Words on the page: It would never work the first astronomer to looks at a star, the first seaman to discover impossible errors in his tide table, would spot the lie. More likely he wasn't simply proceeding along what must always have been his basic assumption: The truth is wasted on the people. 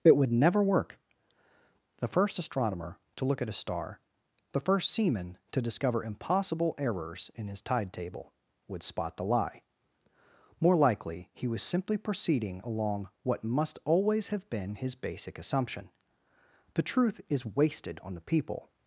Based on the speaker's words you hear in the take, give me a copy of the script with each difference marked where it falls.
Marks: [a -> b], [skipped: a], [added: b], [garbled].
It would never work the first astronomer to [looks -> look] at a star, the first seaman to discover impossible errors in his tide table, would spot the lie. More likely he [wasn't -> was] simply proceeding along what must always have been his basic assumption: The truth is wasted on the people.